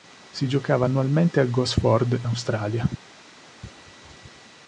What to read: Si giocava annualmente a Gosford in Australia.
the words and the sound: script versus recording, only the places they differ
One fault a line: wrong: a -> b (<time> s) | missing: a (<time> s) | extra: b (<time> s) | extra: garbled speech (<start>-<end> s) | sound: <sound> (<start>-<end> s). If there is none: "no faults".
missing: in (2.2 s)